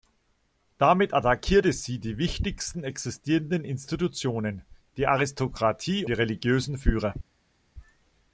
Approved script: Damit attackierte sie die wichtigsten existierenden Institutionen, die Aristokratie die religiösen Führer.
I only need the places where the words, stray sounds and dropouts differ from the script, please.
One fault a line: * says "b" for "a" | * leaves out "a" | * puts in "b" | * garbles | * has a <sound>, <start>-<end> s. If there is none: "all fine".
all fine